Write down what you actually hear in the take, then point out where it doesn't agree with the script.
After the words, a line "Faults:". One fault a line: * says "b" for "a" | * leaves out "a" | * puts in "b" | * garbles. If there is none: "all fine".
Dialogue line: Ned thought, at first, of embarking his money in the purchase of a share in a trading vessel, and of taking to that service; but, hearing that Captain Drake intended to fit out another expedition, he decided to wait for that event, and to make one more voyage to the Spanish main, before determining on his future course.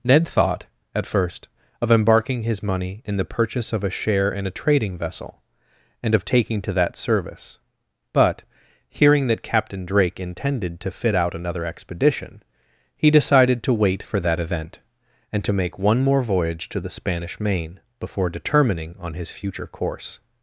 Ned thought, at first, of embarking his money in the purchase of a share in a trading vessel, and of taking to that service; but, hearing that Captain Drake intended to fit out another expedition, he decided to wait for that event, and to make one more voyage to the Spanish main, before determining on his future course.
Faults:
all fine